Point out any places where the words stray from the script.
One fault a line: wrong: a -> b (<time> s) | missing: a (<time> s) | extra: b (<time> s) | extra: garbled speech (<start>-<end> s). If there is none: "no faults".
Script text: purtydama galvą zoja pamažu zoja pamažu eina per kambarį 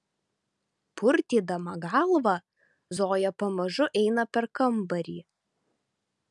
missing: zoja pamažu (3.9 s)